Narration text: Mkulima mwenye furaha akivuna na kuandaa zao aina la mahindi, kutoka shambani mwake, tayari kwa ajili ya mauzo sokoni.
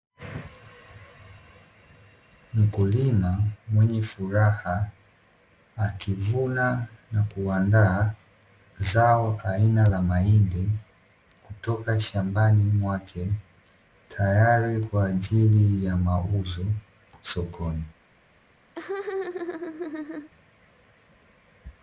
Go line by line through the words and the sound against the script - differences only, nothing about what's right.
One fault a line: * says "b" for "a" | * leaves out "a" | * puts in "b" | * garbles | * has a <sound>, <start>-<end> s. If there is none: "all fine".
* has a laugh, 18.8-20.3 s